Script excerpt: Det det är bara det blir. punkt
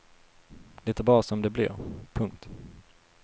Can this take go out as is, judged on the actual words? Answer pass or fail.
fail